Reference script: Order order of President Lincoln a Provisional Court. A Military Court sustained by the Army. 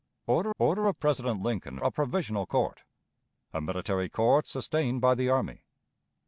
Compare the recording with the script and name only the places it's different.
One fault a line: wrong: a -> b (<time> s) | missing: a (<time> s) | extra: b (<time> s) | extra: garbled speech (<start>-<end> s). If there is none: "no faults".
no faults